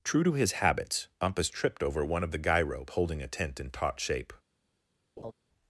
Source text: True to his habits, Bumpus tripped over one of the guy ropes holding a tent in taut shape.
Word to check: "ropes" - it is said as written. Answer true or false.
false